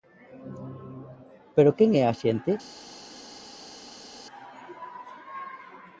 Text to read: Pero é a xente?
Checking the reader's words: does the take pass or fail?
fail